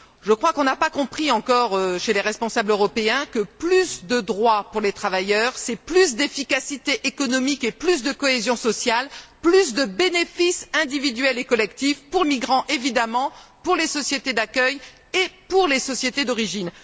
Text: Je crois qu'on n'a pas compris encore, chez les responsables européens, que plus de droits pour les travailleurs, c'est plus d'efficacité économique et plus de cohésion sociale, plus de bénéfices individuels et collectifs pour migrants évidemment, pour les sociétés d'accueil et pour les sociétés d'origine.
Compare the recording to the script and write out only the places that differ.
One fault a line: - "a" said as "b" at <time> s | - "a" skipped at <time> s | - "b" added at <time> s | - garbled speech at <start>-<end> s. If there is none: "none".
none